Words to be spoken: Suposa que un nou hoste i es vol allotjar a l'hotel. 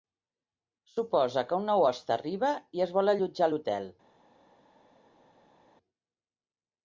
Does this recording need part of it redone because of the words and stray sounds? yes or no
yes